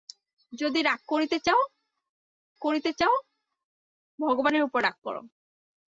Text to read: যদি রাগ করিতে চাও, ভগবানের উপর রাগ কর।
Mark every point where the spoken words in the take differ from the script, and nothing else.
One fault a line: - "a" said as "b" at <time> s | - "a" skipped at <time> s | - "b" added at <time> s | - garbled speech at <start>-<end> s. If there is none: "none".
- "করিতে চাও" added at 2.6 s